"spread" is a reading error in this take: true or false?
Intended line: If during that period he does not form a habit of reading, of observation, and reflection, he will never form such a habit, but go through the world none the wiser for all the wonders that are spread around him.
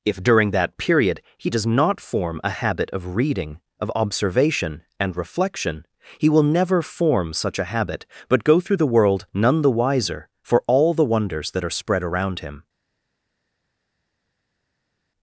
false